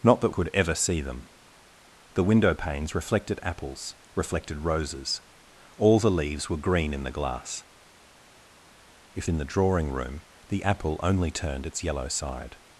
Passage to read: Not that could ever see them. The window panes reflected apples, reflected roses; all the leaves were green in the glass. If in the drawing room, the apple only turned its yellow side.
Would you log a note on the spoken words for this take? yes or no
no